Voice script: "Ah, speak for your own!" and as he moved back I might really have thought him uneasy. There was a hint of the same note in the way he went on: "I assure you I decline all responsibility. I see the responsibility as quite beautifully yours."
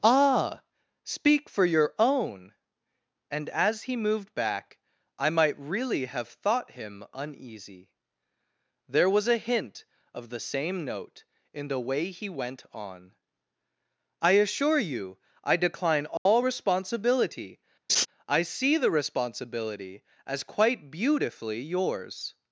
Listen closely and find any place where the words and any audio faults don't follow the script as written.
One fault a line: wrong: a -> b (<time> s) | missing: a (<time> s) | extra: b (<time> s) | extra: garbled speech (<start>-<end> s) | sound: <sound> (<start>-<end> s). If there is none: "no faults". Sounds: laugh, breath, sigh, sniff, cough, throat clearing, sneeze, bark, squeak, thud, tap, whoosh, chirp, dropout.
sound: dropout (16.2-16.3 s)
sound: laugh (17.9-18.1 s)